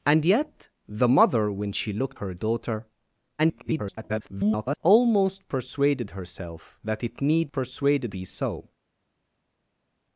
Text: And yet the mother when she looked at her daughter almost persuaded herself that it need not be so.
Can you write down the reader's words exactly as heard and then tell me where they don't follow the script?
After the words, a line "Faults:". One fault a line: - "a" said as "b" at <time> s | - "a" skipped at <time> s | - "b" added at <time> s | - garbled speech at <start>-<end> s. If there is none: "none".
And yet the mother when she looked her daughter [garbled] almost persuaded herself that it need persuaded be so.
Faults:
- "at" skipped at 2.2 s
- garbled speech at 3.4-4.8 s
- "not" said as "persuaded" at 7.5 s